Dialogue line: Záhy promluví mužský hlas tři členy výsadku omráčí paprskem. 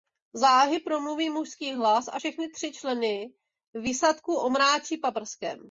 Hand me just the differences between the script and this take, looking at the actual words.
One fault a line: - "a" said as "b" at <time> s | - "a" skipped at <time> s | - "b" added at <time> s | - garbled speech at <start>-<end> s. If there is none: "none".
- "a všechny" added at 2.1 s